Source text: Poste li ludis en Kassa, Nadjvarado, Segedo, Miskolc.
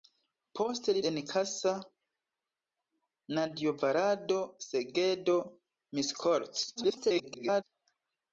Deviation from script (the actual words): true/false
true